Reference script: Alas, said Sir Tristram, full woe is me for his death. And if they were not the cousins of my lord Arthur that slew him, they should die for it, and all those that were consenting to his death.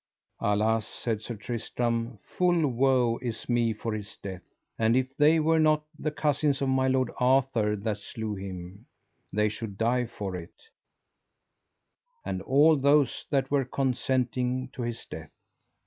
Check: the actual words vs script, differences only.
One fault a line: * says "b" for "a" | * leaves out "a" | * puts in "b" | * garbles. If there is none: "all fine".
all fine